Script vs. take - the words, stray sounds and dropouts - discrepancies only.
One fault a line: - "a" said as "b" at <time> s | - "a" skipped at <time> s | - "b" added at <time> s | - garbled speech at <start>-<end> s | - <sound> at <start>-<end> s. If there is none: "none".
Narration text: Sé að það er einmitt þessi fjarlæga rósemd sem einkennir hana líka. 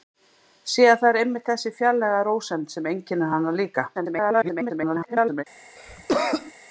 - garbled speech at 3.9-5.4 s
- cough at 5.8-6.5 s